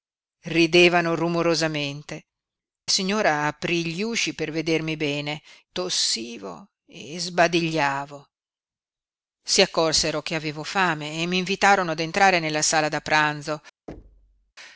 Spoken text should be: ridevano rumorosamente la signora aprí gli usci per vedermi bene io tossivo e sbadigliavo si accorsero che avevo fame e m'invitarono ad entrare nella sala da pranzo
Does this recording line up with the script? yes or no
no